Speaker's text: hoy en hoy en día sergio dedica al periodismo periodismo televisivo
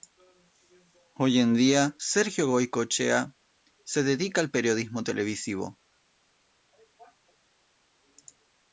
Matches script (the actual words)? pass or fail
fail